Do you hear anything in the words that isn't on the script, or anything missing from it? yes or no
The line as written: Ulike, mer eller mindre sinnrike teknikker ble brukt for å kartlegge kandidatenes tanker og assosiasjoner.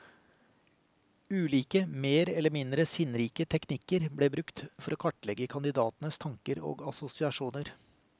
no